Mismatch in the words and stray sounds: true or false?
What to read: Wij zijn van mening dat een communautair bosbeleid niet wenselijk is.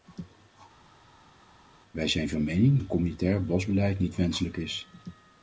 true